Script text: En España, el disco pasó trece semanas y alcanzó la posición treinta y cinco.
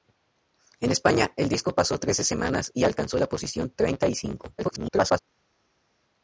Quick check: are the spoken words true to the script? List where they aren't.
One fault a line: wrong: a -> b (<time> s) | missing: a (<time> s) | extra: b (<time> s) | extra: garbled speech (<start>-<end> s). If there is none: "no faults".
extra: garbled speech (4.6-5.2 s)